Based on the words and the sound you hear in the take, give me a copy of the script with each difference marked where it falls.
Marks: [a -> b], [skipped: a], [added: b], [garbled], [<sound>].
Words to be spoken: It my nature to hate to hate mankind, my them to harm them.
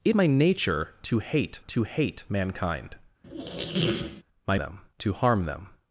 It my nature to hate to hate mankind, [squeak] my them to harm them.